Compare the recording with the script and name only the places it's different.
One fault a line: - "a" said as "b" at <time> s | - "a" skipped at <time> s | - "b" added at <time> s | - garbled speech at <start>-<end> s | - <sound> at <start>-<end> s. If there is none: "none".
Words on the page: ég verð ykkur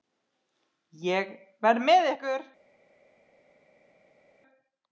- "með" added at 1.9 s